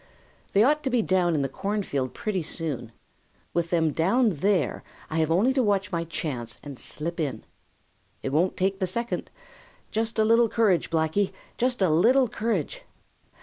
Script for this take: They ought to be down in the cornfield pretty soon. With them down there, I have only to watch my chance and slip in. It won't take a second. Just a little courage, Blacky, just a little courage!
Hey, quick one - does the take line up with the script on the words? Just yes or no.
yes